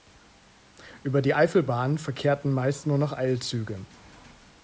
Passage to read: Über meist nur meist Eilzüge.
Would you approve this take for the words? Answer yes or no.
no